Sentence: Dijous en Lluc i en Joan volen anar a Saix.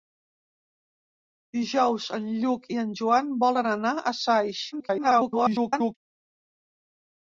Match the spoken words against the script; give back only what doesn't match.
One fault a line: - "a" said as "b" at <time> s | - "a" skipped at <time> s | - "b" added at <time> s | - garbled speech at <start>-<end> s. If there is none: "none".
- garbled speech at 4.7-6.0 s